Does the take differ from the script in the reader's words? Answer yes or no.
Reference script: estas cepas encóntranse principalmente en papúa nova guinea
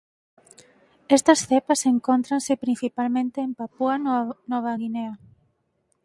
no